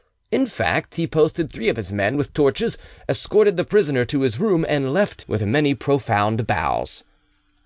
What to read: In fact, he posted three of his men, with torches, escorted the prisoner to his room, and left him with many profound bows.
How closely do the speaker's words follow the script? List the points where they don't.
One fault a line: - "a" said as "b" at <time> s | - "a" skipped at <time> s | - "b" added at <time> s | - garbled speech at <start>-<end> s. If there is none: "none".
- "him" skipped at 5.2 s